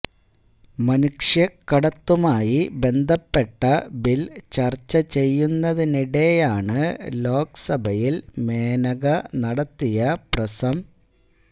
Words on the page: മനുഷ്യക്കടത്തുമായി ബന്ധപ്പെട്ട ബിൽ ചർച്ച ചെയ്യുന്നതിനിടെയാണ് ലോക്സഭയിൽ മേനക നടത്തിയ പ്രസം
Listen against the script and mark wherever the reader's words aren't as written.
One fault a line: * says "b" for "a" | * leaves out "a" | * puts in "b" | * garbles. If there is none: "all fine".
all fine